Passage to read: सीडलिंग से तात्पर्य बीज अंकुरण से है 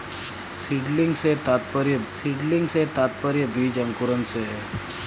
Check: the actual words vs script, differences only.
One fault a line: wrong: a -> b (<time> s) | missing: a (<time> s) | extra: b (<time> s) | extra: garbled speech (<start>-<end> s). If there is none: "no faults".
extra: सीडलिंग से तात्पर्य (2.1 s)